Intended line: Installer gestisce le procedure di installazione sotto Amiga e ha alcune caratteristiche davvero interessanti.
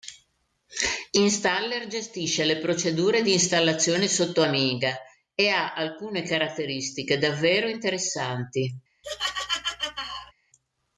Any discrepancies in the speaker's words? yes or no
no